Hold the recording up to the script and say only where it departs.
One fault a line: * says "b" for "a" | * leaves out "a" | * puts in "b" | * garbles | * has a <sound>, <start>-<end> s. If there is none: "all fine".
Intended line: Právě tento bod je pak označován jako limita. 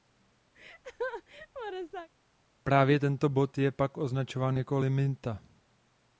* has a laugh, 0.5-2.1 s